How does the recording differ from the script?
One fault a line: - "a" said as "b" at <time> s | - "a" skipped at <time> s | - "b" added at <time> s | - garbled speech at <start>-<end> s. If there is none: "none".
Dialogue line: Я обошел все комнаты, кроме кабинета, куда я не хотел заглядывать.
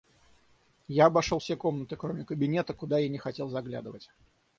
none